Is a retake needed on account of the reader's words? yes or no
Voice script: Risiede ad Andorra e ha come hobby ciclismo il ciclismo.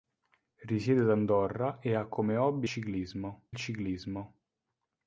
no